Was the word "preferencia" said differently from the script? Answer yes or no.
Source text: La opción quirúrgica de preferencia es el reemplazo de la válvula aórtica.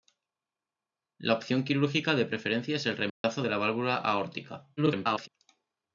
no